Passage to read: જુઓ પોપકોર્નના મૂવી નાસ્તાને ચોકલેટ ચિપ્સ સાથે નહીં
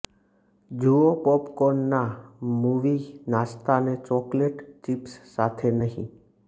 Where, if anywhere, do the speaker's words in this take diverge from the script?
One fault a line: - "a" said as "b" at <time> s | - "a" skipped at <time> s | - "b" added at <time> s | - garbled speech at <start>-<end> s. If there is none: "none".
none